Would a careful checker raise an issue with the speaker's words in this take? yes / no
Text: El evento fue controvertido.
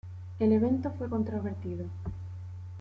no